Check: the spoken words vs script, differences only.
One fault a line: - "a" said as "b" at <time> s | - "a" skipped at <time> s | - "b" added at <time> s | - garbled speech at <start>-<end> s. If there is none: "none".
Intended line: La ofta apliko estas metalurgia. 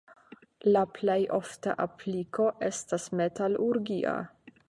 - "plej" added at 0.9 s